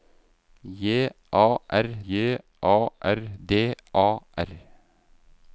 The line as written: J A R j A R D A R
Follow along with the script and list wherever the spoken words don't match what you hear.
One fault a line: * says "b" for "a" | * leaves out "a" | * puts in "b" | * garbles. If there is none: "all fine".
all fine